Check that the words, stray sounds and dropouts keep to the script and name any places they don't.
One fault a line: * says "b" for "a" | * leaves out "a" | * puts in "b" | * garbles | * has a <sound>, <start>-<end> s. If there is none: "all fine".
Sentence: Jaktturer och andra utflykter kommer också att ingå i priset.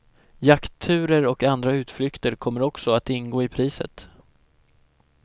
all fine